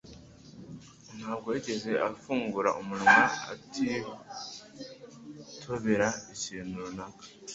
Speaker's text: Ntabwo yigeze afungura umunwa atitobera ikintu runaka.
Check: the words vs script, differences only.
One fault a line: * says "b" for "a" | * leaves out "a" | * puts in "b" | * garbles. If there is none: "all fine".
all fine